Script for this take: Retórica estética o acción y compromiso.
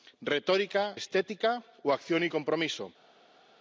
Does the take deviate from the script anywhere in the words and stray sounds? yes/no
no